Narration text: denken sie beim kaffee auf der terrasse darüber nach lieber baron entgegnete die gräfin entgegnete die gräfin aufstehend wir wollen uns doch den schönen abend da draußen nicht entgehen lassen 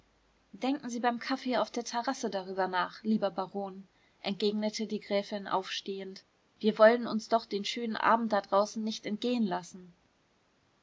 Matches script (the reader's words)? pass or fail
fail